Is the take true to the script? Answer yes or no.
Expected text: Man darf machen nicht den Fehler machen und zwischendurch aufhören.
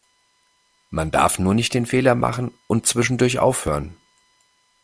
no